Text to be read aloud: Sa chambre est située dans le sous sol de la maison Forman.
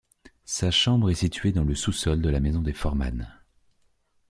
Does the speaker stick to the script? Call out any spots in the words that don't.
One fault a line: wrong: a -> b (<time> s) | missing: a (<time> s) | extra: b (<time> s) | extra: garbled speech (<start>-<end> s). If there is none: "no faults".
extra: des (2.6 s)